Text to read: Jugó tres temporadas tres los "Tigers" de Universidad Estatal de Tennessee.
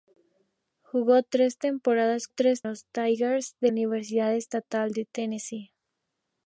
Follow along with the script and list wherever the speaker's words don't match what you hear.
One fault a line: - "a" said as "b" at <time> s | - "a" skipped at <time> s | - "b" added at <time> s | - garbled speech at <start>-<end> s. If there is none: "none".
none